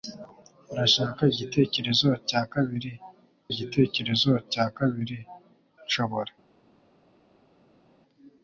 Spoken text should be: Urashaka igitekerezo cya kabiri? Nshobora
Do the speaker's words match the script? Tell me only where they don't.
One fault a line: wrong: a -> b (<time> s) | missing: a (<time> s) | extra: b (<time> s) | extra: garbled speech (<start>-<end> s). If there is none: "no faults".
extra: igitekerezo cya kabiri (3.5 s)